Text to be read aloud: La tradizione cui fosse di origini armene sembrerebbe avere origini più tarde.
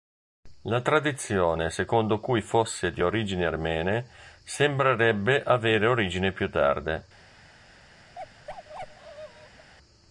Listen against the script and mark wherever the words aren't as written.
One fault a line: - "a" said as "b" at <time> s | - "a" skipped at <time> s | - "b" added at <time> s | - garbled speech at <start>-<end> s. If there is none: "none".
- "secondo" added at 1.7 s